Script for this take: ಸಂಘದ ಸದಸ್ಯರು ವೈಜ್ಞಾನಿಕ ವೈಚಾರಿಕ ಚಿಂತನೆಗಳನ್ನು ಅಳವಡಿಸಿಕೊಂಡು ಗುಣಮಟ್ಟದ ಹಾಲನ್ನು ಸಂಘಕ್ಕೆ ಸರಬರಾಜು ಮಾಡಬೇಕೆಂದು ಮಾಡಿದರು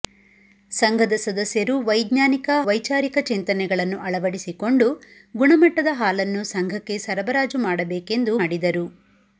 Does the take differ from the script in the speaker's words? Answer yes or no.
no